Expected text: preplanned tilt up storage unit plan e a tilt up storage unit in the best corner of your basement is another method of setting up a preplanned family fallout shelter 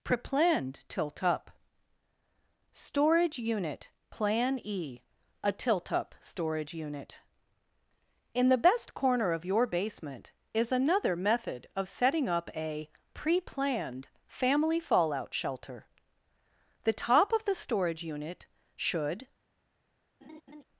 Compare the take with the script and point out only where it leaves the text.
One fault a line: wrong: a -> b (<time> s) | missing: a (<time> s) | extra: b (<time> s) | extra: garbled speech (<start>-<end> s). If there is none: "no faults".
extra: the top of the storage unit should (16.8 s)